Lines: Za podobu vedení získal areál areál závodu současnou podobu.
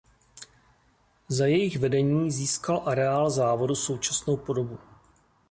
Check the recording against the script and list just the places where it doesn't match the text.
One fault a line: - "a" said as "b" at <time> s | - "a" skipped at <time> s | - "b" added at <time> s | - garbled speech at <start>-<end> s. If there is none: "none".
- "podobu" said as "jejich" at 1.4 s
- "areál" skipped at 3.3 s